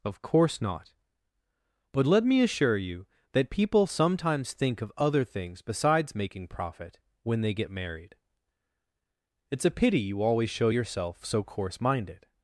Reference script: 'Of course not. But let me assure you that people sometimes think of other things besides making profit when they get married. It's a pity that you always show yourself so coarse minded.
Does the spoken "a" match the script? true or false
true